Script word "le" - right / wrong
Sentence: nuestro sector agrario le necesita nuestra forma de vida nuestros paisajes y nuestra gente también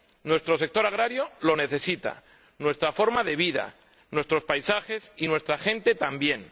wrong